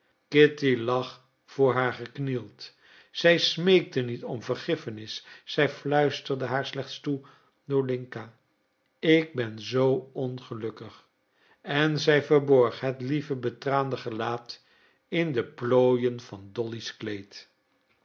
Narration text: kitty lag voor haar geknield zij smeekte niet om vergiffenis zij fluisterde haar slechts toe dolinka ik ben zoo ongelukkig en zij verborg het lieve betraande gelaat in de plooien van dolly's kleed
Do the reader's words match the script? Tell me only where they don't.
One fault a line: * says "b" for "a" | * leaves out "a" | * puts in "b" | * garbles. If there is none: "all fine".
all fine